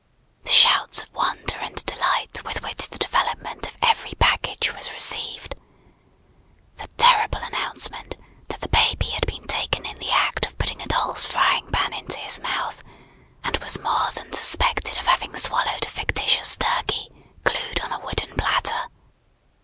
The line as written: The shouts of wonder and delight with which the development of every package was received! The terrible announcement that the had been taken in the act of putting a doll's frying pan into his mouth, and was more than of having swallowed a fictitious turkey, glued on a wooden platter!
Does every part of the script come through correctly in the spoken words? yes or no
no